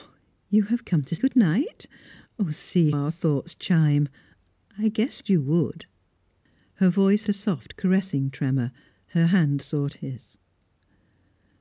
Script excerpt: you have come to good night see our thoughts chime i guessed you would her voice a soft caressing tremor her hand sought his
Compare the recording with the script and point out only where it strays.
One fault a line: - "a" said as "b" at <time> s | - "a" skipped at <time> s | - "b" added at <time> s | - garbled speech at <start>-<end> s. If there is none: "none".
none